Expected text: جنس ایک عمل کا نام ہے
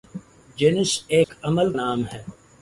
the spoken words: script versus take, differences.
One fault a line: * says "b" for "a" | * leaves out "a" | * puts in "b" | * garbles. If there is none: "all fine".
* leaves out "کا"